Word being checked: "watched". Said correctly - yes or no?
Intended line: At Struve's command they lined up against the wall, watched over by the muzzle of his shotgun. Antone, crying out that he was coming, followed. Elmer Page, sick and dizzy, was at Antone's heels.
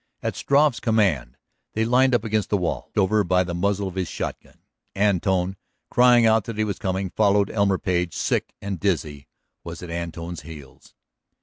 no